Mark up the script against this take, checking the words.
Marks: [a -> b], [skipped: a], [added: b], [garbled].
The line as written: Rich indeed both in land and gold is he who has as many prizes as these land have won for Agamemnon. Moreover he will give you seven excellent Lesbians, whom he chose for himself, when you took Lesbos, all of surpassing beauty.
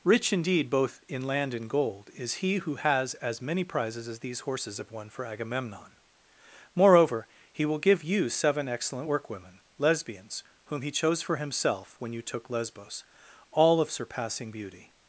Rich indeed both in land and gold is he who has as many prizes as these [land -> horses] have won for Agamemnon. Moreover he will give you seven excellent [added: workwomen] Lesbians, whom he chose for himself, when you took Lesbos, all of surpassing beauty.